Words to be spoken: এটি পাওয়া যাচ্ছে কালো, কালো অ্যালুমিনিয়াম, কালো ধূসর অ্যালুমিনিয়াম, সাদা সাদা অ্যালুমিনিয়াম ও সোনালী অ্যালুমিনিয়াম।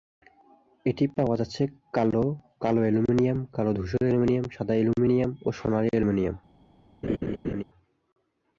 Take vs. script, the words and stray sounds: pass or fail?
fail